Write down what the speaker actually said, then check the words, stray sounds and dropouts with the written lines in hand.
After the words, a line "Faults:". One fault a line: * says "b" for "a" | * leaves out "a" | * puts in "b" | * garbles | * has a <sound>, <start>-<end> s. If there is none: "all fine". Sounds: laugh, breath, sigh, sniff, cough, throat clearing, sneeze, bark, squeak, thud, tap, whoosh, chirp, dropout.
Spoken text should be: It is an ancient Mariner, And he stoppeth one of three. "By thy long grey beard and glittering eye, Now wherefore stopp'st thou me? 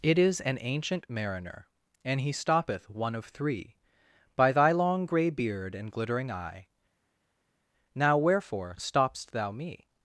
It is an ancient Mariner, And he stoppeth one of three. "By thy long grey beard and glittering eye, Now wherefore stopp'st thou me?
Faults:
all fine